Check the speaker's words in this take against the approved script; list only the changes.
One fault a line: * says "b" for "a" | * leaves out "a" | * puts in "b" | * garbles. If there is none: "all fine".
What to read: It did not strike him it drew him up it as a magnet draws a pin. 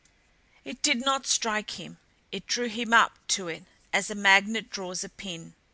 * puts in "to"